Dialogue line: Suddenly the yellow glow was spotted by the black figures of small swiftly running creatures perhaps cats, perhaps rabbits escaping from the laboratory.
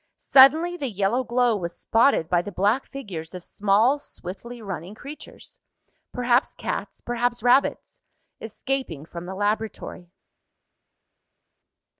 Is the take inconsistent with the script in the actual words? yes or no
no